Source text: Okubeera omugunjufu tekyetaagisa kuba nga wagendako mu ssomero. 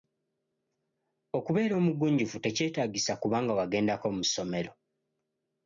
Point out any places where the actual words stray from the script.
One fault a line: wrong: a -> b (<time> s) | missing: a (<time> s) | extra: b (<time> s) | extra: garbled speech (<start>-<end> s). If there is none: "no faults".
no faults